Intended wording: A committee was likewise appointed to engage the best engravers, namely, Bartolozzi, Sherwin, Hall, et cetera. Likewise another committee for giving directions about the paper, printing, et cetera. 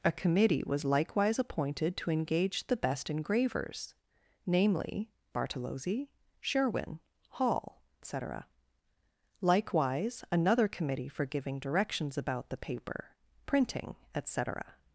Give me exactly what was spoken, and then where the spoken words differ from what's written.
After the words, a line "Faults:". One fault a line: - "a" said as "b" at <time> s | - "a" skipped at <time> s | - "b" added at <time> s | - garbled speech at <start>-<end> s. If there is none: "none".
A committee was likewise appointed to engage the best engravers, namely, Bartolozzi, Sherwin, Hall, cetera. Likewise another committee for giving directions about the paper, printing, et cetera.
Faults:
- "et" skipped at 7.8 s